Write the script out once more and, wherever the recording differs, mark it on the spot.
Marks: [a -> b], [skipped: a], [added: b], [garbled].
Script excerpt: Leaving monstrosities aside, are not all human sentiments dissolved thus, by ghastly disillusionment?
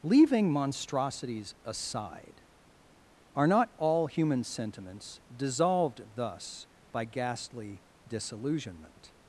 Leaving monstrosities aside, are not all human sentiments dissolved thus, by ghastly disillusionment?